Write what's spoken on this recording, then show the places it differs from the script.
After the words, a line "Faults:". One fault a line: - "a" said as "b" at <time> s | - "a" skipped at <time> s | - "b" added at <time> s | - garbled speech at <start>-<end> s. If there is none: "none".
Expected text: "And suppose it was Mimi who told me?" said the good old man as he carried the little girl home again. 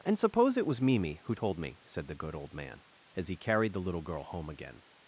"And suppose it was Mimi who told me?" said the good old man as he carried the little girl home again.
Faults:
none